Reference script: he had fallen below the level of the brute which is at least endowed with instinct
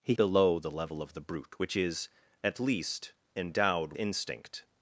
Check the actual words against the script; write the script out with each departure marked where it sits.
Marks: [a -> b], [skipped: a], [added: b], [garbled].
he [skipped: had fallen] below the level of the brute which is at least endowed [skipped: with] instinct